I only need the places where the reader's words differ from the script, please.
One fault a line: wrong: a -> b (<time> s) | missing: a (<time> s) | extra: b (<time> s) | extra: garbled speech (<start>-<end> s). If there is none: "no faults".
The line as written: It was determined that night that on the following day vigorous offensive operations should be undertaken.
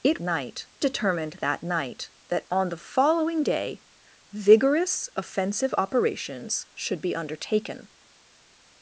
wrong: was -> night (0.2 s)